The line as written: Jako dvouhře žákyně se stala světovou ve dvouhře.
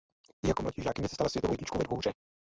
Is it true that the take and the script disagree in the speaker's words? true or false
true